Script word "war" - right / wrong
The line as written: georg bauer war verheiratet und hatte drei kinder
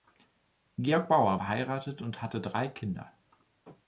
wrong